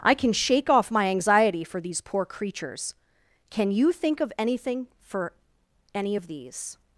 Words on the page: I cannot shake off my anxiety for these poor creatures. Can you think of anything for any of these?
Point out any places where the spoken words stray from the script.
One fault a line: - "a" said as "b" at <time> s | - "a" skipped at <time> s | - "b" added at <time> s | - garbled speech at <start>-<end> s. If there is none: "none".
- "cannot" said as "can" at 0.1 s